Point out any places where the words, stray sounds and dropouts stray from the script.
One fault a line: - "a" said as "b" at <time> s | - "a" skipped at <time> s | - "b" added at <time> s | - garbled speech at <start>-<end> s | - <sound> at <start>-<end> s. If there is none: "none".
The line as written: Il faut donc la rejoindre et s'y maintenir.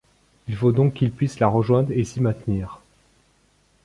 - "qu'il puisse" added at 0.9 s